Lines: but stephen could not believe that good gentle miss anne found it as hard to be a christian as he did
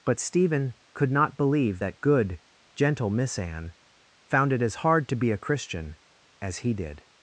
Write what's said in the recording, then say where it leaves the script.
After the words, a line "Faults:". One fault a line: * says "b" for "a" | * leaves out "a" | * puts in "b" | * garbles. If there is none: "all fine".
but stephen could not believe that good gentle miss anne found it as hard to be a christian as he did
Faults:
all fine